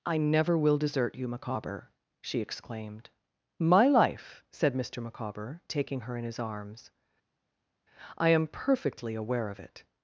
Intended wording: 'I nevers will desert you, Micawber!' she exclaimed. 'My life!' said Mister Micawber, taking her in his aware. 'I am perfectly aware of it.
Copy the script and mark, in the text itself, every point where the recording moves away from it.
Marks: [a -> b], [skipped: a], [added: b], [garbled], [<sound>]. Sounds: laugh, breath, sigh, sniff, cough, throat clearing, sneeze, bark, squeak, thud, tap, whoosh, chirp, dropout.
'I [nevers -> never] will desert you, Micawber!' she exclaimed. 'My life!' said Mister Micawber, taking her in his [aware. -> arms] 'I am perfectly aware of it.